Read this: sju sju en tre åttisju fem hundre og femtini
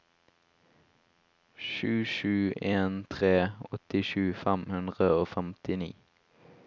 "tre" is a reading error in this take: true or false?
false